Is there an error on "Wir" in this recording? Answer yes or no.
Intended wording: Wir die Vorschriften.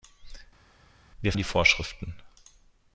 no